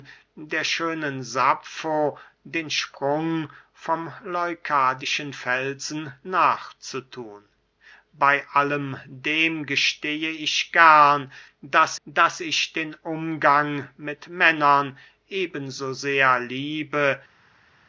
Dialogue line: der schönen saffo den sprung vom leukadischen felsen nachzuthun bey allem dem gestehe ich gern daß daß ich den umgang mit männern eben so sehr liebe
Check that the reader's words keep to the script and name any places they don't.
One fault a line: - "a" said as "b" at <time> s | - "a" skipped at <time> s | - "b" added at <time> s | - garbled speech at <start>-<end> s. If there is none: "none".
none